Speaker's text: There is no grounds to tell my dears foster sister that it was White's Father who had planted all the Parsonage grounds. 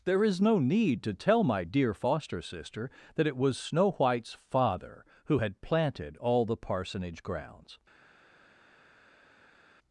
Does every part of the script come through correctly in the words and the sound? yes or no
no